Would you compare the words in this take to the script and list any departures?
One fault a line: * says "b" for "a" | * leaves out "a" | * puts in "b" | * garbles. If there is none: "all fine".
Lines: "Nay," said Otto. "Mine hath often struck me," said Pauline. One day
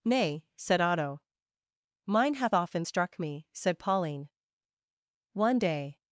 all fine